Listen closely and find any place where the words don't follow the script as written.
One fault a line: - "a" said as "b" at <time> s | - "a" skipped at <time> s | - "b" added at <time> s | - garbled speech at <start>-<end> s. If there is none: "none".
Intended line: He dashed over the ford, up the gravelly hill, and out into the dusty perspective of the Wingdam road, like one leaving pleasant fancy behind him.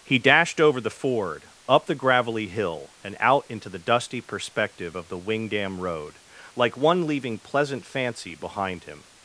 none